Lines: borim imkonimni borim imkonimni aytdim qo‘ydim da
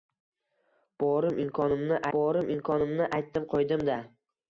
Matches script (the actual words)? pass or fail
pass